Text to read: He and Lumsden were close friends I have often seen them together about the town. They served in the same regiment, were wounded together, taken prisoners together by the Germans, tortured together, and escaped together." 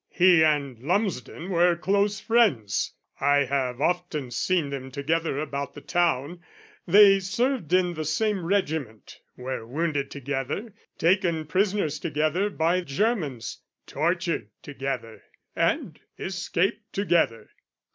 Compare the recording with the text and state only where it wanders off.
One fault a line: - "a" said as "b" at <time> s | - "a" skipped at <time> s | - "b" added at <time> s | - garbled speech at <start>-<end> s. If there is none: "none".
- "the" skipped at 12.8 s